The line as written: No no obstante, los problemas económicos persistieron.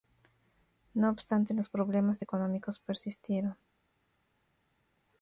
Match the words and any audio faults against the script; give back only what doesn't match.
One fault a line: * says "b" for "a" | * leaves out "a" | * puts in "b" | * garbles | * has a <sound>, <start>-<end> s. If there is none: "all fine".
* leaves out "no"